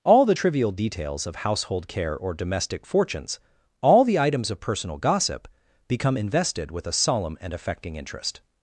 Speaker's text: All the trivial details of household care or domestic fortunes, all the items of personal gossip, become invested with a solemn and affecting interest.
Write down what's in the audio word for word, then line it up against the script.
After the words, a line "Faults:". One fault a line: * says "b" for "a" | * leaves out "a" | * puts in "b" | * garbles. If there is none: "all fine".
All the trivial details of household care or domestic fortunes, all the items of personal gossip, become invested with a solemn and affecting interest.
Faults:
all fine